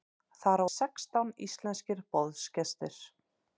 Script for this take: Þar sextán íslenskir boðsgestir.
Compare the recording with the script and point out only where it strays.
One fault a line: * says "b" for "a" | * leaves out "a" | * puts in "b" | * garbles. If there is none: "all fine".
all fine